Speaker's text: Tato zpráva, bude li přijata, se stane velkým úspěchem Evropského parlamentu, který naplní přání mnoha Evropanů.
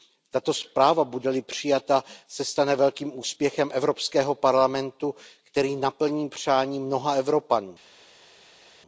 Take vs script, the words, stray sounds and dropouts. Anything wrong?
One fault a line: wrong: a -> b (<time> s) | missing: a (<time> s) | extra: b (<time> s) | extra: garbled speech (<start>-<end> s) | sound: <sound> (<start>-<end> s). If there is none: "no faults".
no faults